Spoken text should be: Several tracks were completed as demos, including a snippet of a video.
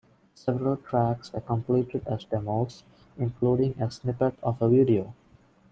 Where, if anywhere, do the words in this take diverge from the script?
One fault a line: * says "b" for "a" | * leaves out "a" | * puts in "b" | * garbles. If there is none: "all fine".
all fine